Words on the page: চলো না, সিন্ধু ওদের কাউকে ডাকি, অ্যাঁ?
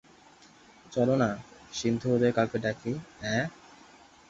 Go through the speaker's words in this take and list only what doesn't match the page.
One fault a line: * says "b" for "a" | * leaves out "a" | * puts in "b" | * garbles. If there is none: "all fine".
all fine